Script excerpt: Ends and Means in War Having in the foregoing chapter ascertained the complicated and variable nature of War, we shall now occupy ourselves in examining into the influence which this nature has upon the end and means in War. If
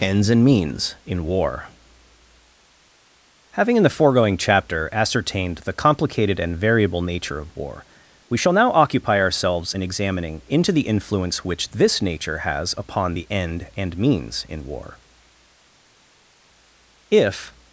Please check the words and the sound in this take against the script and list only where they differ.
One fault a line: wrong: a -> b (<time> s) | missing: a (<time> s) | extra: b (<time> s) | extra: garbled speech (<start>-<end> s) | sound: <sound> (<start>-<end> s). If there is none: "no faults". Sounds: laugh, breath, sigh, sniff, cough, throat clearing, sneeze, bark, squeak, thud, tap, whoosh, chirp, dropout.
no faults